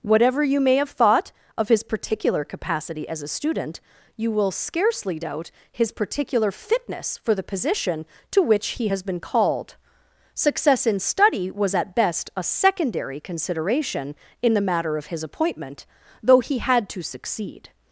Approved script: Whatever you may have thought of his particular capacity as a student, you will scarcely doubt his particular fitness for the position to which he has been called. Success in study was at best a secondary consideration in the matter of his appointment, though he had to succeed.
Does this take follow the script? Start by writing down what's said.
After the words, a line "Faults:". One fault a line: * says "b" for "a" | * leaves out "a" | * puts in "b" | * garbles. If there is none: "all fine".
Whatever you may have thought of his particular capacity as a student, you will scarcely doubt his particular fitness for the position to which he has been called. Success in study was at best a secondary consideration in the matter of his appointment, though he had to succeed.
Faults:
all fine